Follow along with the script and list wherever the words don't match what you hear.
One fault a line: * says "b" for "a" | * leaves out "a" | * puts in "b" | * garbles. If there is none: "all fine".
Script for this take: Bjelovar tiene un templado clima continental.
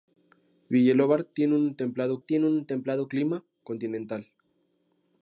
* puts in "tiene un templado"